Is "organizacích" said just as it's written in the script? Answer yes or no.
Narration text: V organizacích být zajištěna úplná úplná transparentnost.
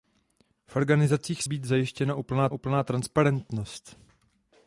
yes